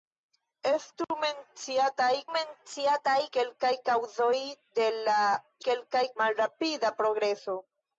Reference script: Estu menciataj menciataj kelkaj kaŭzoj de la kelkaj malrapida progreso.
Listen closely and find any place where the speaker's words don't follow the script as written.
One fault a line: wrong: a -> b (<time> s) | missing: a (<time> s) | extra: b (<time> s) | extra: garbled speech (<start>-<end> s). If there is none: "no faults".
no faults